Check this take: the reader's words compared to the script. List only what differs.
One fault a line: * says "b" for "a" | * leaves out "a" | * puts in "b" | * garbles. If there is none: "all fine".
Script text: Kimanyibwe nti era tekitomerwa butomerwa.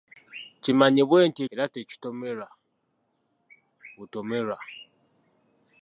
all fine